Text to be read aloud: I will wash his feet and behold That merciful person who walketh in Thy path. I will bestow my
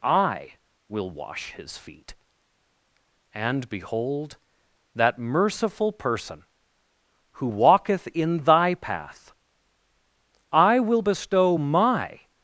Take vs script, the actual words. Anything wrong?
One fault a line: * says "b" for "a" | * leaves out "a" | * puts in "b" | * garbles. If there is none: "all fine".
all fine